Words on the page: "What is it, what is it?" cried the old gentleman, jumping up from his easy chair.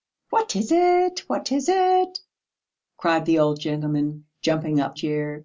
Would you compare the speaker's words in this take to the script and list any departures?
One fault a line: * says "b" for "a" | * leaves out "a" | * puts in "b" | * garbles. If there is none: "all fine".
* leaves out "from his easy"